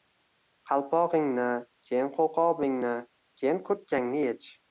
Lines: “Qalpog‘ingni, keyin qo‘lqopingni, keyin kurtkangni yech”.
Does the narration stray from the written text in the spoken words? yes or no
no